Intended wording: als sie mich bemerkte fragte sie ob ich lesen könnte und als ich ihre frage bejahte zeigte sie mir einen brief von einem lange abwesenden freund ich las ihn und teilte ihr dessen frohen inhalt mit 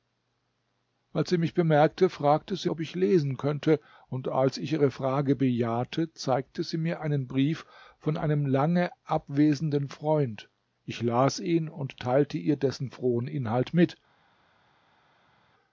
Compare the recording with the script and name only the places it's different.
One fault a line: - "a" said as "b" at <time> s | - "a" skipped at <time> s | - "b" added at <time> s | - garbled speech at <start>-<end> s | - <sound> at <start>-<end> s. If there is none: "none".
none